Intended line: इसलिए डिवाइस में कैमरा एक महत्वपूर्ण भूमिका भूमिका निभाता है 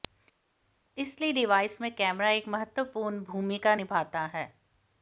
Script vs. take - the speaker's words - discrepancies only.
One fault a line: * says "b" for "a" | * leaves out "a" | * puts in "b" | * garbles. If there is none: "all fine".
* leaves out "भूमिका"